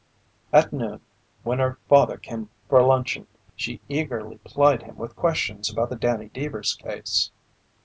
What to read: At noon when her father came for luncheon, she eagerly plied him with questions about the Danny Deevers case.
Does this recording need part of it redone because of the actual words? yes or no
no